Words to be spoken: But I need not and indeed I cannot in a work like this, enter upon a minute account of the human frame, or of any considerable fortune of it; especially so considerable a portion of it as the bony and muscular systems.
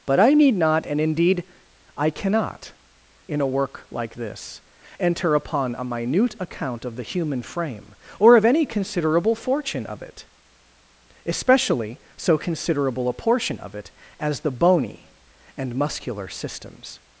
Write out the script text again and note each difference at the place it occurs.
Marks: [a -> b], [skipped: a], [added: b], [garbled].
But I need not and indeed I cannot in a work like this, enter upon a minute account of the human frame, or of any considerable fortune of it; especially so considerable a portion of it as the bony and muscular systems.